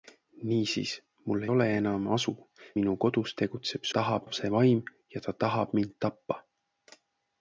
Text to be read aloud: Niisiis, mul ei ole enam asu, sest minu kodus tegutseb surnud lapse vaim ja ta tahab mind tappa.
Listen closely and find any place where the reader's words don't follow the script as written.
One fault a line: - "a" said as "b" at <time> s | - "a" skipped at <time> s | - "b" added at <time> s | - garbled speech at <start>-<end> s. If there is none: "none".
- "ei" skipped at 1.4 s
- "sest" skipped at 2.4 s
- "surnud" said as "tahab" at 4.0 s